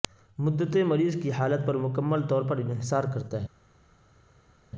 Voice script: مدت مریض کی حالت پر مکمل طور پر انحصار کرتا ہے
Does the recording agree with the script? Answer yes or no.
yes